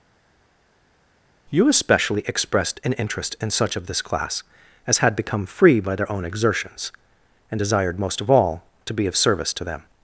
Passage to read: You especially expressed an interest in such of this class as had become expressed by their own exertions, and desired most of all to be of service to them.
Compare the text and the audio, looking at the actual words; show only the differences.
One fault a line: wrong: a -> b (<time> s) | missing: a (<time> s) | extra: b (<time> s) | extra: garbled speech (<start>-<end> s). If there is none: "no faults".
wrong: expressed -> free (5.4 s)